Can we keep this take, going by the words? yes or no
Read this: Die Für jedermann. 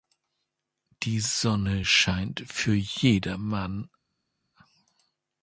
no